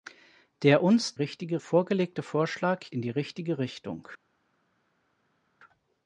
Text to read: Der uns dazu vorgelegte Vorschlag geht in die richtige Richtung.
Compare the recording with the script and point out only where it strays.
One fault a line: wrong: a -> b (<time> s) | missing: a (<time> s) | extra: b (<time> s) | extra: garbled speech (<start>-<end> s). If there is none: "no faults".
wrong: dazu -> richtige (1.1 s)
missing: geht (2.9 s)